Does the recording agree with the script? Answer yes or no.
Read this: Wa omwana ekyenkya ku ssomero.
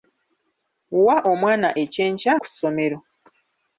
yes